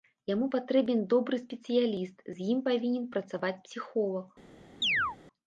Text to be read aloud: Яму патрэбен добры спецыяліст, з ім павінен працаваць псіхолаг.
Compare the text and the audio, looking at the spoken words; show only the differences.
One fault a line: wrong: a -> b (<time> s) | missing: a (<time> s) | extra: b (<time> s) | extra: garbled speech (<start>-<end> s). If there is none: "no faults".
no faults